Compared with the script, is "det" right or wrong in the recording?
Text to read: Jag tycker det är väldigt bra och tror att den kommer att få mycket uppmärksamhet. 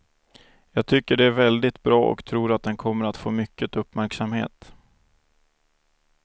right